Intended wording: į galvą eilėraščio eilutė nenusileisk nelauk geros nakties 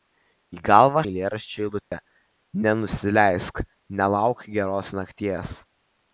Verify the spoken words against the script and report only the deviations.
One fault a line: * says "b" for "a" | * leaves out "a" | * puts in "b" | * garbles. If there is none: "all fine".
all fine